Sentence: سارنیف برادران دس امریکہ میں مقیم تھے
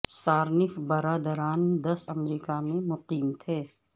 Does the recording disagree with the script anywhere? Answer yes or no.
no